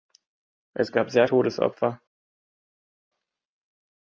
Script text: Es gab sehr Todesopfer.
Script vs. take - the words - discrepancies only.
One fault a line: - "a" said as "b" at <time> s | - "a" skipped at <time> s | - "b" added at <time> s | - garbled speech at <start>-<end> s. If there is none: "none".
none